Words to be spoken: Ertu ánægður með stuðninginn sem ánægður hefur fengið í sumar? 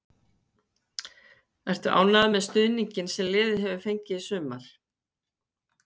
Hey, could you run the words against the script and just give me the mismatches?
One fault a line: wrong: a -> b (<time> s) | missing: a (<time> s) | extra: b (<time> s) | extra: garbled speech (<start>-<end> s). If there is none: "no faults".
wrong: ánægður -> liðið (3.4 s)